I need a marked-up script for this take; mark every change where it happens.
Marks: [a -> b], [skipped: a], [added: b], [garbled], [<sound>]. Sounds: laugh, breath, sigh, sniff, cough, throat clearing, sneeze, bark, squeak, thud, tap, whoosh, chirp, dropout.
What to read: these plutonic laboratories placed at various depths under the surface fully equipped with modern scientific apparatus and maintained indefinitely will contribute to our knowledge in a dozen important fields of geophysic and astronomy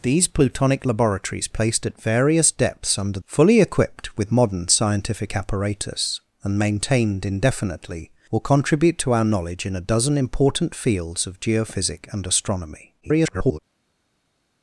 these plutonic laboratories placed at various depths under [skipped: the surface] fully equipped with modern scientific apparatus and maintained indefinitely will contribute to our knowledge in a dozen important fields of geophysic and astronomy [garbled]